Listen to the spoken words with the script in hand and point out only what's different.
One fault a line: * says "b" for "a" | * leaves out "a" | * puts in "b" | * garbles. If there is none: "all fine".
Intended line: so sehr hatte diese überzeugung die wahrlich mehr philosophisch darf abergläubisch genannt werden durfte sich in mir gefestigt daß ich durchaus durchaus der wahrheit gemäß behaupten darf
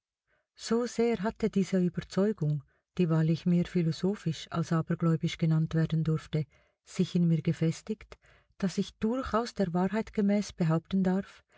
* says "als" for "darf"
* leaves out "durchaus"